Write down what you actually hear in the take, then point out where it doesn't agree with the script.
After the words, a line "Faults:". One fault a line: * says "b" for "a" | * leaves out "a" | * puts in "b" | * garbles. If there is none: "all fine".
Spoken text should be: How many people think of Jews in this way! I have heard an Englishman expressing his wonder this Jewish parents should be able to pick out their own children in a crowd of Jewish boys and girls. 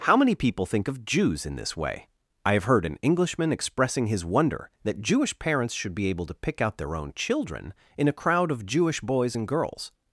How many people think of Jews in this way! I have heard an Englishman expressing his wonder that Jewish parents should be able to pick out their own children in a crowd of Jewish boys and girls.
Faults:
* says "that" for "this"